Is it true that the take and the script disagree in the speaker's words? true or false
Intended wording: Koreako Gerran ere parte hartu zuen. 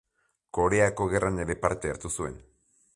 false